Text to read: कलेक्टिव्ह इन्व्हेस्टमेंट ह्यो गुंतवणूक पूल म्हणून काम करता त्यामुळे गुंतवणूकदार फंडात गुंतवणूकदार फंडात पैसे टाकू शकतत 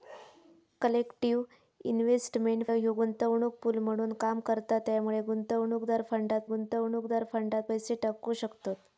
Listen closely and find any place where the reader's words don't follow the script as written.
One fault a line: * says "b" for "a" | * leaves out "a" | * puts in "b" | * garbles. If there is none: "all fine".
all fine